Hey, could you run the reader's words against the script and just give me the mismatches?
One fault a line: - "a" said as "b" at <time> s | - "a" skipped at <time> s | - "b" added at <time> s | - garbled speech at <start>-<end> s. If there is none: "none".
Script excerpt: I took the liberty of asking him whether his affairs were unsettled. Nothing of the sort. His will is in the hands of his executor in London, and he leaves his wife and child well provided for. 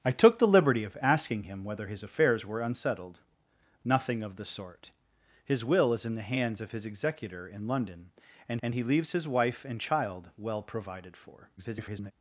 - "and" added at 8.6 s
- garbled speech at 11.6-12.1 s